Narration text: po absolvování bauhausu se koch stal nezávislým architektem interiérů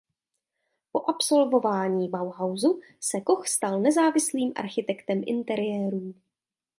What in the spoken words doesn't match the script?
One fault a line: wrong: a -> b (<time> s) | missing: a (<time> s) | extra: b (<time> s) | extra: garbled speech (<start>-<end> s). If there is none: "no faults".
no faults